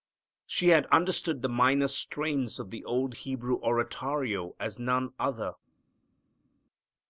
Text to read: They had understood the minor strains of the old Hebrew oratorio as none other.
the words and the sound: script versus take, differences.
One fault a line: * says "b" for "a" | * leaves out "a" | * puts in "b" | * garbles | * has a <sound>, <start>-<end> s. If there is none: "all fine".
* says "She" for "They"